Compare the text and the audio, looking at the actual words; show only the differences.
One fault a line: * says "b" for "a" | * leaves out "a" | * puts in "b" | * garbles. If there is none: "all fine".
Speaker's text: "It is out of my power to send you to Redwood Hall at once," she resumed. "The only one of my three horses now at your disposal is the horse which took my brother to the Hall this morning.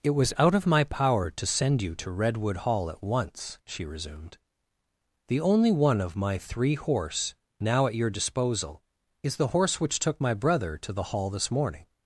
* says "was" for "is"
* says "horse" for "horses"